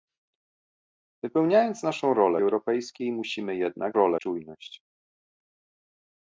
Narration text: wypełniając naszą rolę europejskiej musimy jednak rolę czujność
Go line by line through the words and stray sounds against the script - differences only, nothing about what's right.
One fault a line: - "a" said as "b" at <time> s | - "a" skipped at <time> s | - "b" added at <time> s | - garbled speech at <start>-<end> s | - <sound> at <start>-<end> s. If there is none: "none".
none